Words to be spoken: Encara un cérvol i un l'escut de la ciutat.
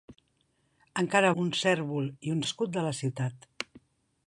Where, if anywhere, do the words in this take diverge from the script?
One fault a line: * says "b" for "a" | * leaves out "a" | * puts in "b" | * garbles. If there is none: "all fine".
all fine